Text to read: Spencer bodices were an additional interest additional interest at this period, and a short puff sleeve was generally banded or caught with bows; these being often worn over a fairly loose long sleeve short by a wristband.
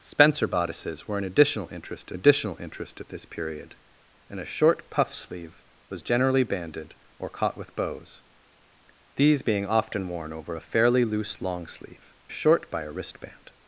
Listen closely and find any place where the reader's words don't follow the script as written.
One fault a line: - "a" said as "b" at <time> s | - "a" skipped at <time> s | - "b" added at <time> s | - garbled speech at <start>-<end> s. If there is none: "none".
none